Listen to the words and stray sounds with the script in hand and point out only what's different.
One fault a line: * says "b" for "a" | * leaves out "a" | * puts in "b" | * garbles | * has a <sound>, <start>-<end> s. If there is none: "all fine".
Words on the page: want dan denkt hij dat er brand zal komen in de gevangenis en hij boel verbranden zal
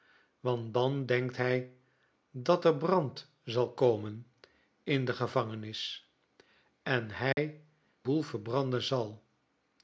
* has a dropout, 7.3-7.4 s